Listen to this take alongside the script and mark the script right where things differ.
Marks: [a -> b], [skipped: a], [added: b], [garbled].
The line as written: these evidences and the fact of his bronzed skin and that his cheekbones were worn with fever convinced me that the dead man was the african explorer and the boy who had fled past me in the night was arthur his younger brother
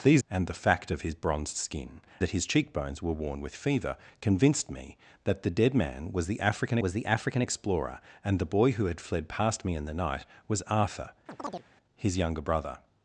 these [skipped: evidences] and the fact of his bronzed skin [skipped: and] that his cheekbones were worn with fever convinced me that the dead man was the african [added: was the african] explorer and the boy who had fled past me in the night was arthur his younger brother